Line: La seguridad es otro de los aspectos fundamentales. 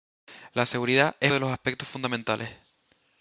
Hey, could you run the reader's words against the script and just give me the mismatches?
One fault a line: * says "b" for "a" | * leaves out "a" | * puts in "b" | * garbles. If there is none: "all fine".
* leaves out "otro"